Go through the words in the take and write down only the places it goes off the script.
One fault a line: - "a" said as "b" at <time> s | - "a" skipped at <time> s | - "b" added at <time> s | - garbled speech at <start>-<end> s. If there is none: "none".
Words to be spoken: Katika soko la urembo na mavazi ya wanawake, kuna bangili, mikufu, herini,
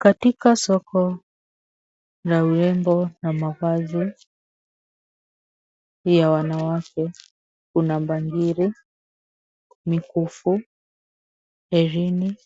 none